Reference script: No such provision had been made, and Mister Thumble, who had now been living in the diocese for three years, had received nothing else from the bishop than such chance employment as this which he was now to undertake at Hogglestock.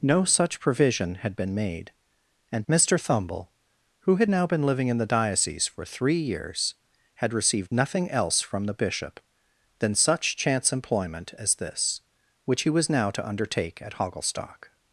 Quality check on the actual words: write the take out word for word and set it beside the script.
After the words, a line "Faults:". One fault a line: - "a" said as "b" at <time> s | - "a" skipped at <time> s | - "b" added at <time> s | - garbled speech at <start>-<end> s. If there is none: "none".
No such provision had been made, and Mister Thumble, who had now been living in the diocese for three years, had received nothing else from the bishop than such chance employment as this which he was now to undertake at Hogglestock.
Faults:
none